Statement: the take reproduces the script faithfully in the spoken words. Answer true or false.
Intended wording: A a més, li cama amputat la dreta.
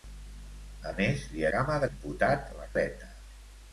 true